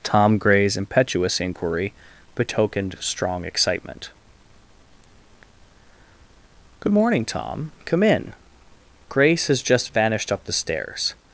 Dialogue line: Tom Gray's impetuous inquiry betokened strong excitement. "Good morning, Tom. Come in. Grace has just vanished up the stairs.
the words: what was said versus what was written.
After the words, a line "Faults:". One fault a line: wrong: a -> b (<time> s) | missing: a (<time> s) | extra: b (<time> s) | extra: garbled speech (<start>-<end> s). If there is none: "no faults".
Tom Gray's impetuous inquiry betokened strong excitement. "Good morning, Tom. Come in. Grace has just vanished up the stairs.
Faults:
no faults